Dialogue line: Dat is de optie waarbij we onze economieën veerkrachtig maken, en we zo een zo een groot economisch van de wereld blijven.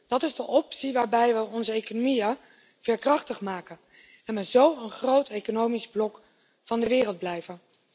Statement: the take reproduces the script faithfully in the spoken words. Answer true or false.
false